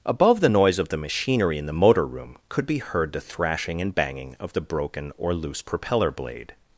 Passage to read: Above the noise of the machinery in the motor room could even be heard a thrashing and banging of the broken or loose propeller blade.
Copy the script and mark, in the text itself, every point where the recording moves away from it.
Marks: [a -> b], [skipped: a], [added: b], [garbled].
Above the noise of the machinery in the motor room could [skipped: even] be heard [a -> the] thrashing and banging of the broken or loose propeller blade.